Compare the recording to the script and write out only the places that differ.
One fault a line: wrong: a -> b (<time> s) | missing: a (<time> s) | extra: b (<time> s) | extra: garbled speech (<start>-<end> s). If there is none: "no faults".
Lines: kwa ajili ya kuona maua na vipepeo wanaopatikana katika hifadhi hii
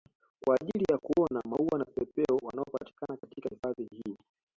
no faults